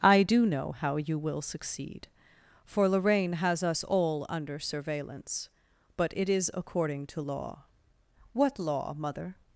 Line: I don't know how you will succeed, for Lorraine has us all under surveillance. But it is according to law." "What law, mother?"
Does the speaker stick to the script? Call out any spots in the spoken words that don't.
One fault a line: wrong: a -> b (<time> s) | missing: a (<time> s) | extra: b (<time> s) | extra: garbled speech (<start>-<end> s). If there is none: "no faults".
wrong: don't -> do (0.2 s)